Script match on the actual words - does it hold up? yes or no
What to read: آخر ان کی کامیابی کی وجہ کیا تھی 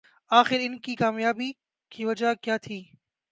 yes